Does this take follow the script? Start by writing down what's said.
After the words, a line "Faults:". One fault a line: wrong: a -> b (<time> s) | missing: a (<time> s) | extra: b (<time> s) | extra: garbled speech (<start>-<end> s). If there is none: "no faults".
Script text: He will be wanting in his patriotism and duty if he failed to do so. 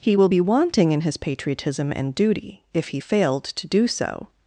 He will be wanting in his patriotism and duty if he failed to do so.
Faults:
no faults